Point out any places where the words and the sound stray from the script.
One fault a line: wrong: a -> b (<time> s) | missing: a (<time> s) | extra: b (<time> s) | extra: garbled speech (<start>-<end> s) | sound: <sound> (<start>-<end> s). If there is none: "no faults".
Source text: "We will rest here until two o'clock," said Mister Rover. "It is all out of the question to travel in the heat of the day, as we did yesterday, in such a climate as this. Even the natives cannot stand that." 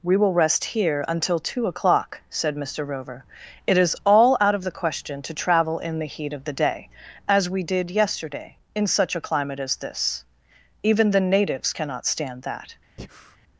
sound: breath (13.0-13.4 s)